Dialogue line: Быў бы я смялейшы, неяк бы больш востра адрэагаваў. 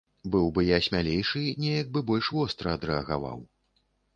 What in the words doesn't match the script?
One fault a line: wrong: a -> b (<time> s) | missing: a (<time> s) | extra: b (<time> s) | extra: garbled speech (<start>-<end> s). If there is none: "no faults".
no faults